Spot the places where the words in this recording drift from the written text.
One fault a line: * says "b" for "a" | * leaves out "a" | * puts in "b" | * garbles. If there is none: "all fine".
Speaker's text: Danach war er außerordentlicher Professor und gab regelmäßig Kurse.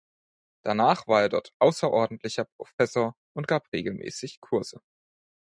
* puts in "dort"